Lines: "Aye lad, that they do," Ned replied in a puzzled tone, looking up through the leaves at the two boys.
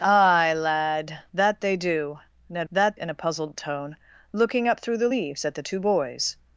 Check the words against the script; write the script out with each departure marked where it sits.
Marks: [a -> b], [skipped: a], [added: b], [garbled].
"Aye lad, that they do," Ned [replied -> that] in a puzzled tone, looking up through the leaves at the two boys.